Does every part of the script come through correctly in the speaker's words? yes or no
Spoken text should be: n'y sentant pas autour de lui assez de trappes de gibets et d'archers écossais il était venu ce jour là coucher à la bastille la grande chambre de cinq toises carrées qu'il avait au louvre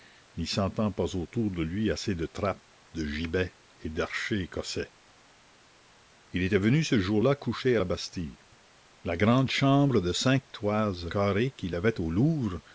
yes